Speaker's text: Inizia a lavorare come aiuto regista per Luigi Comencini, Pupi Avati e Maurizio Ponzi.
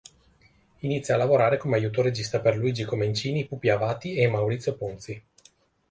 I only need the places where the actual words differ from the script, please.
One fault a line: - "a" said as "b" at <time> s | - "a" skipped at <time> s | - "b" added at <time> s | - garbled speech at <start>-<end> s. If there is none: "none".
none